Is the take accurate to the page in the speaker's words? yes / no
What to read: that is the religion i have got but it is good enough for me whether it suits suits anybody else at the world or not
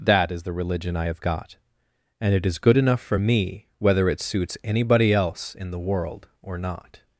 no